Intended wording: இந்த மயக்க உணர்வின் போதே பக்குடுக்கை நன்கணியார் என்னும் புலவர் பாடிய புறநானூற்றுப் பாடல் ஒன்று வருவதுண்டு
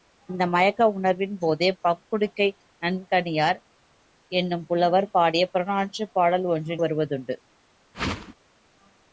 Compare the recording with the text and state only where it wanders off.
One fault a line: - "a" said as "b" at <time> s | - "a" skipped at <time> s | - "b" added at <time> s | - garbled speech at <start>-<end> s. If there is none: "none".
none